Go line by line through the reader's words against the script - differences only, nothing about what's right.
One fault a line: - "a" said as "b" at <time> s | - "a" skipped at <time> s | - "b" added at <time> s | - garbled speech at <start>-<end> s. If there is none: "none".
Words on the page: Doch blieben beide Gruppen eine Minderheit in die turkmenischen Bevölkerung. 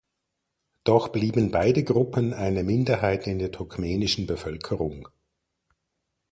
- "die" said as "der" at 3.4 s